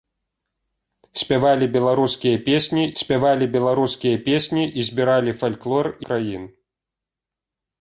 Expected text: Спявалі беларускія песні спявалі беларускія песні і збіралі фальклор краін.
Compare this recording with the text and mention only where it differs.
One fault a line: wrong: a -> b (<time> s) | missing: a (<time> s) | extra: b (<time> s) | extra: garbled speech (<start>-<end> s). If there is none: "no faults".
no faults